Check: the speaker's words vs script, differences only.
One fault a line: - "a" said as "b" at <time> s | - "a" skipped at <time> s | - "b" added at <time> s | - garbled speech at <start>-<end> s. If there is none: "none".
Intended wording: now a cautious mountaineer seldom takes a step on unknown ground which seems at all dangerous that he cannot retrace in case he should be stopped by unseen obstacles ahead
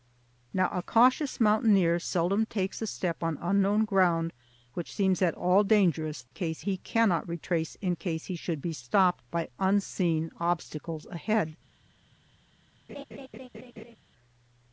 - "that" said as "case" at 6.3 s